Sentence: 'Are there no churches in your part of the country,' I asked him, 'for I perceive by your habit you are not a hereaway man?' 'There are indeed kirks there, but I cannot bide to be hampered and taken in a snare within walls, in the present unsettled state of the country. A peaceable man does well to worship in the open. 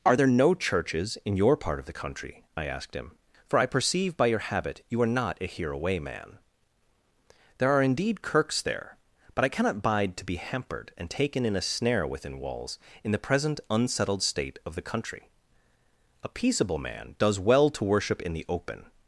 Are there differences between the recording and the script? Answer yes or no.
no